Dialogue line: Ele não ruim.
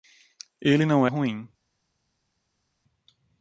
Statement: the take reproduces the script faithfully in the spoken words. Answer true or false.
true